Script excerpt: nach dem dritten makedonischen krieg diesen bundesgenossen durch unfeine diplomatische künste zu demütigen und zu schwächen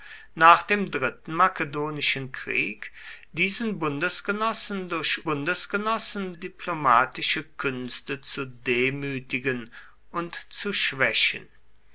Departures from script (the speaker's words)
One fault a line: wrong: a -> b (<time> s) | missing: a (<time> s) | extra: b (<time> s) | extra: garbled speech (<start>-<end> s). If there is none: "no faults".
wrong: unfeine -> bundesgenossen (5.2 s)